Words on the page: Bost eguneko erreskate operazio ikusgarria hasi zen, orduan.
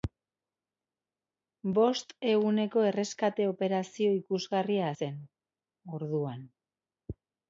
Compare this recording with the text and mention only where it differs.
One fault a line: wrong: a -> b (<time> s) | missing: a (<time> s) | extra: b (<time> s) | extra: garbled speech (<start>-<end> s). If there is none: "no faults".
missing: hasi (4.9 s)